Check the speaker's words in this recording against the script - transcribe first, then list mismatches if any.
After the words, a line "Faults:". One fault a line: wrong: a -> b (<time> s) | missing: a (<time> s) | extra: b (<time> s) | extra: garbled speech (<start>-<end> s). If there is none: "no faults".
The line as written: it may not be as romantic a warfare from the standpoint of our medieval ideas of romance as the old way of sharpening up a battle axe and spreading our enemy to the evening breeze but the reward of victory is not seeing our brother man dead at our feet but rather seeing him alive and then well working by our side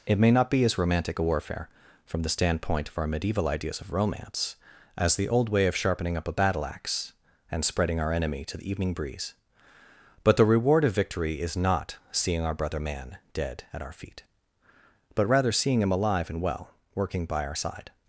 it may not be as romantic a warfare from the standpoint of our medieval ideas of romance as the old way of sharpening up a battle axe and spreading our enemy to the evening breeze but the reward of victory is not seeing our brother man dead at our feet but rather seeing him alive and well working by our side
Faults:
missing: then (16.4 s)